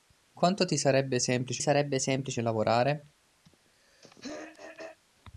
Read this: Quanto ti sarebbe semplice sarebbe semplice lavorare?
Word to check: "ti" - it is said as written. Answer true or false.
true